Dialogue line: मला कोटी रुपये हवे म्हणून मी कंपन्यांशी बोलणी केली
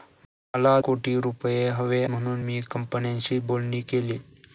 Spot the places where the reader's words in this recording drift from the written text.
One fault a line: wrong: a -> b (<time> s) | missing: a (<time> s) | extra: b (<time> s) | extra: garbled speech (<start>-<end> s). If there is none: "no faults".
no faults